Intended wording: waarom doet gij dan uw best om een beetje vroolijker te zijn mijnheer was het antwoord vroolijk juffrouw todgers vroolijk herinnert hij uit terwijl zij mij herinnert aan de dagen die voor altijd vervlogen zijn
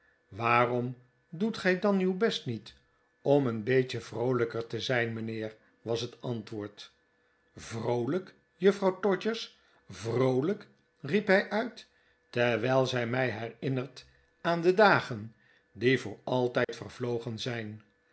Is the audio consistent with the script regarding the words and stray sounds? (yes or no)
no